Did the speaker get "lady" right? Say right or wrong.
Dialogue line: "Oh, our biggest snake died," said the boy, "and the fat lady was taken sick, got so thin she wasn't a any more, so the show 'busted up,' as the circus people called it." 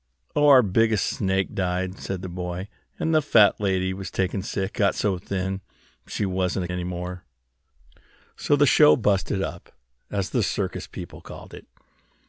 right